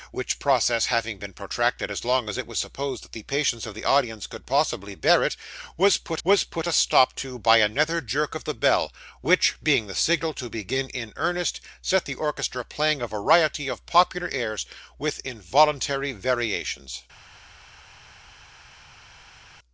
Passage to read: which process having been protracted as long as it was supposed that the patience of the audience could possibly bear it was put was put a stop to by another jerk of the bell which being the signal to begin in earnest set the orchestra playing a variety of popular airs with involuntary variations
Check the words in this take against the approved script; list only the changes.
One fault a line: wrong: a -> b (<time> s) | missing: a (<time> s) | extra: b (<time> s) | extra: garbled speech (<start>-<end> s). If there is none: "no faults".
no faults